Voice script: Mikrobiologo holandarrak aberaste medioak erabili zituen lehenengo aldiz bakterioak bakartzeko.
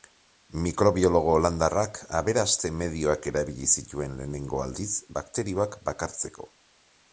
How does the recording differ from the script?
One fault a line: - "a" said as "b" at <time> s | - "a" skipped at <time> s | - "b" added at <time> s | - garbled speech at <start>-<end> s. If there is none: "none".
none